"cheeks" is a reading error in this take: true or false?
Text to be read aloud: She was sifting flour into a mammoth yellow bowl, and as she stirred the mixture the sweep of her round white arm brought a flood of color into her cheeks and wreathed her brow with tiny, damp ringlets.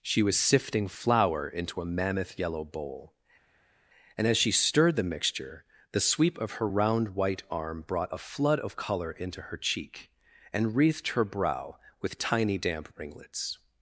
true